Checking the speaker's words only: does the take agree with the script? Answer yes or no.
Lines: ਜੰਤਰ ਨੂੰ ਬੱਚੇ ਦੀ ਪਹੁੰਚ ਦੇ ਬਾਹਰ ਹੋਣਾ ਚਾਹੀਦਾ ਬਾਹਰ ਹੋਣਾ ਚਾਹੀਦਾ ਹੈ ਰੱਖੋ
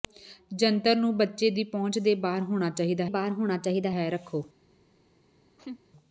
yes